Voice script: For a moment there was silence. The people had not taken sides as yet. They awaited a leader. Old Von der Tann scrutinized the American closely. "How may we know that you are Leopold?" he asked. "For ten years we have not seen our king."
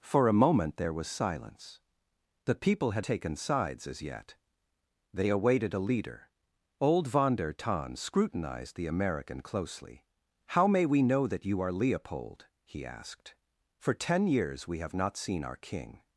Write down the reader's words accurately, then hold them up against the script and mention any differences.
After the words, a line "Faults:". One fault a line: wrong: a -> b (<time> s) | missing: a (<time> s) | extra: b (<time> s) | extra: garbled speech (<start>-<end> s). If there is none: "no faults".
For a moment there was silence. The people had taken sides as yet. They awaited a leader. Old Von der Tann scrutinized the American closely. "How may we know that you are Leopold?" he asked. "For ten years we have not seen our king."
Faults:
missing: not (3.0 s)